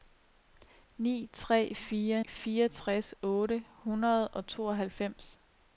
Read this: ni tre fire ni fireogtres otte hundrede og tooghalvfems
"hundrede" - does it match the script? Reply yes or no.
yes